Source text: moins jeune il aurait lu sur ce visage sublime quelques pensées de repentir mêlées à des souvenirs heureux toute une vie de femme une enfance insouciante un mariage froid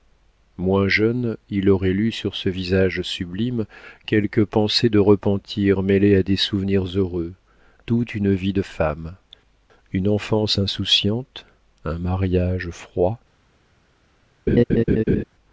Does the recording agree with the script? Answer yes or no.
yes